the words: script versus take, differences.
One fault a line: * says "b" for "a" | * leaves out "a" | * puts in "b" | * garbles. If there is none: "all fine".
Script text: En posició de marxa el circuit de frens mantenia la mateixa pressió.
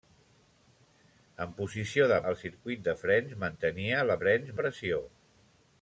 * leaves out "marxa"
* says "frens" for "mateixa"